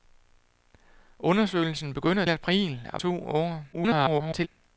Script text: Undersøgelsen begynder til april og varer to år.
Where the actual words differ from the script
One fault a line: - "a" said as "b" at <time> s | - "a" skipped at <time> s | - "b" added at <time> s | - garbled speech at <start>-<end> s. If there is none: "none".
- "til" skipped at 2.2 s
- "varer" skipped at 3.0 s
- garbled speech at 3.7-4.5 s